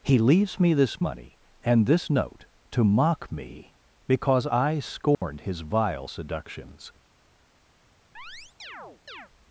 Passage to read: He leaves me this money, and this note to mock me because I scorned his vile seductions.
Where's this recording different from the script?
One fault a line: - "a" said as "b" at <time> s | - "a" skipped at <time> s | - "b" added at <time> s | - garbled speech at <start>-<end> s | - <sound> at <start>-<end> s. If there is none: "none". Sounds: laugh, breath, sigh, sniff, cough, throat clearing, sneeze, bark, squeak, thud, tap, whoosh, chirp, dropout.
- dropout at 5.1-5.2 s
- chirp at 8.1-9.3 s